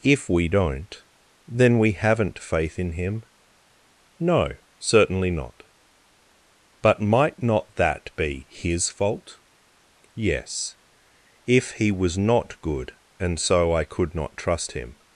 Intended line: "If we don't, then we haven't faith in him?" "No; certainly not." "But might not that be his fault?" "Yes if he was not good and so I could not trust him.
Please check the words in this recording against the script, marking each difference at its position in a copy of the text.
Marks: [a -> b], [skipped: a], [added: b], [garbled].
"If we don't, then we haven't faith in him?" "No; certainly not." "But might not that be his fault?" "Yes if he was not good and so I could not trust him.